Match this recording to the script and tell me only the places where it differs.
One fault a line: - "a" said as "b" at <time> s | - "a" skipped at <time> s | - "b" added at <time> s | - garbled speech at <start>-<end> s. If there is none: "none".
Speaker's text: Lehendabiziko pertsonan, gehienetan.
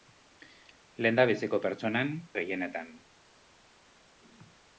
none